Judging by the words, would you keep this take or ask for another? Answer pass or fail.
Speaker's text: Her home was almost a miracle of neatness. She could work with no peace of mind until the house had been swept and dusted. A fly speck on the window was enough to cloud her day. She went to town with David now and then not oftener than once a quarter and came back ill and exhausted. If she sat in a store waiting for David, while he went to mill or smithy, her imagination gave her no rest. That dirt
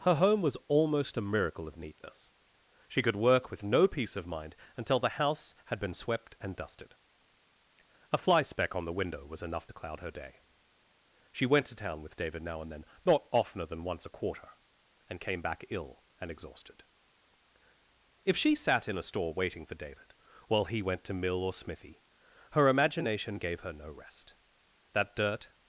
pass